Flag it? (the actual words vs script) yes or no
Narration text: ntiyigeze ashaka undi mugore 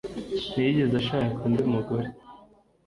no